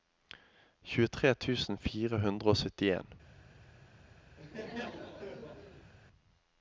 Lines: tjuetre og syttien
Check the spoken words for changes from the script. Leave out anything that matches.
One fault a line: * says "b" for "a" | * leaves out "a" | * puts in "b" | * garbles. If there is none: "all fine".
* puts in "tusen fire hundre"